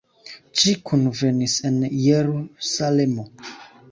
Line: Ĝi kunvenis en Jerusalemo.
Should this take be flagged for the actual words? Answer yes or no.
no